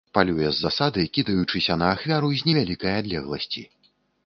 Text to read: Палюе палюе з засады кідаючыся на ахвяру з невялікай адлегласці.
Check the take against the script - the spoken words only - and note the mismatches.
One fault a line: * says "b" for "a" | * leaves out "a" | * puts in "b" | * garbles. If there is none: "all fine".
* leaves out "палюе"